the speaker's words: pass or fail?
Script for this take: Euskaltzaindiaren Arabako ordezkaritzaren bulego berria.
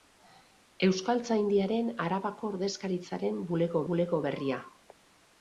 fail